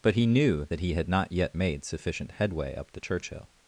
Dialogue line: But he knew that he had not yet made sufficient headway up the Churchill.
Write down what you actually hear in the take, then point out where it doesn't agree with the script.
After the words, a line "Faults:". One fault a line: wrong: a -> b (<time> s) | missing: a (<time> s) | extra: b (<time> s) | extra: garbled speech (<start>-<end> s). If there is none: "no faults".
But he knew that he had not yet made sufficient headway up the Churchill.
Faults:
no faults